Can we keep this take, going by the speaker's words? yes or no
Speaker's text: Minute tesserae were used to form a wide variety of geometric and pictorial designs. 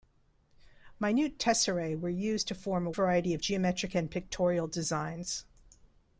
no